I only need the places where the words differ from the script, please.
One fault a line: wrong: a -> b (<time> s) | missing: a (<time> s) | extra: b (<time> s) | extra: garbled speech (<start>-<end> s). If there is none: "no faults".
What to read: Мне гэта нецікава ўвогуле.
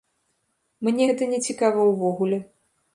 no faults